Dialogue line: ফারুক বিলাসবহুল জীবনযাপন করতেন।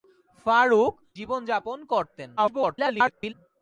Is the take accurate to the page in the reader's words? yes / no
no